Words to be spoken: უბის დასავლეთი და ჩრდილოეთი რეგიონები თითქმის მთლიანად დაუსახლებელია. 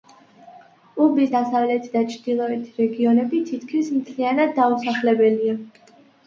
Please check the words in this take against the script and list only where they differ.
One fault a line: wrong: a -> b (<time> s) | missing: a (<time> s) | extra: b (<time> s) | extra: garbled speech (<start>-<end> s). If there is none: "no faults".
no faults